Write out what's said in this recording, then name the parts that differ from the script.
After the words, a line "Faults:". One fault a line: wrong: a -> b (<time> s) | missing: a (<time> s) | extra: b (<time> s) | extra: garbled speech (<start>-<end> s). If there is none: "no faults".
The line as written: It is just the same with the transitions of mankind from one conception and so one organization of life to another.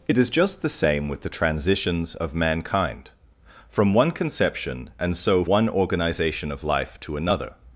It is just the same with the transitions of mankind from one conception and so one organization of life to another.
Faults:
no faults